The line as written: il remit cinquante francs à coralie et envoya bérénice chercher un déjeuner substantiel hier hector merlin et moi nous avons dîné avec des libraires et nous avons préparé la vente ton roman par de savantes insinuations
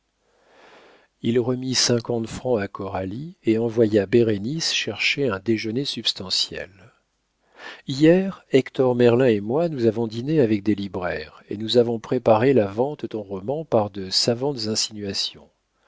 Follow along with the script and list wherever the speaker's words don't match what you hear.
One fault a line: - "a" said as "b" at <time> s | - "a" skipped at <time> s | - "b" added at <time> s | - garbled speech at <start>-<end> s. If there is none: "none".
none